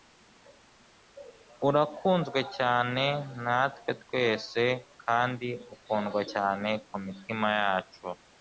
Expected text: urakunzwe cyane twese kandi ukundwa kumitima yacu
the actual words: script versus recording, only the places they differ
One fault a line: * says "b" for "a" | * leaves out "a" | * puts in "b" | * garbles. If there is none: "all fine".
* puts in "natwe"
* puts in "cyane"